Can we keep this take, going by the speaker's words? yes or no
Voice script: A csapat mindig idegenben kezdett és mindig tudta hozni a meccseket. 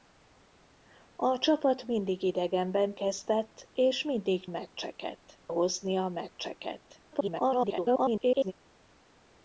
no